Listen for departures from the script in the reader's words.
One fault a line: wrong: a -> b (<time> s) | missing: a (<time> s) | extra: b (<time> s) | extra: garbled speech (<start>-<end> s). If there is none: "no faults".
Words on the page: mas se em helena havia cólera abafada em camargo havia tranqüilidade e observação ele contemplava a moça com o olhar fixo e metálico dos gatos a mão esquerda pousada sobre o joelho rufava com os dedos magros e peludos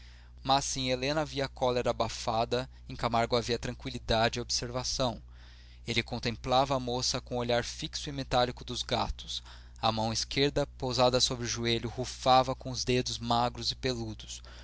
no faults